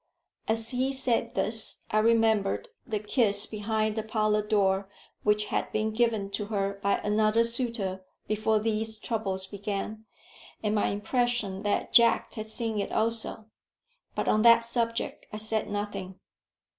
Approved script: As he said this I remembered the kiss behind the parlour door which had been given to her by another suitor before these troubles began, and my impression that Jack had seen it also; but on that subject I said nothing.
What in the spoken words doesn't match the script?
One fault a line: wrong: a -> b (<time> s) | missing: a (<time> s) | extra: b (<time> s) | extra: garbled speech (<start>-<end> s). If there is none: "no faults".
no faults